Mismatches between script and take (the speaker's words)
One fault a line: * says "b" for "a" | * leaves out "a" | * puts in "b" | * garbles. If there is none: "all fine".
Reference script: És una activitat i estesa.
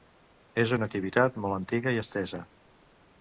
* puts in "molt antiga"